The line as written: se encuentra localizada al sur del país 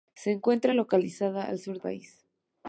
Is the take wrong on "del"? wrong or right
wrong